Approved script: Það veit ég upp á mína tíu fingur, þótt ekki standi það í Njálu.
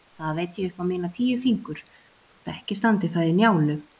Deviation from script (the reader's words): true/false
false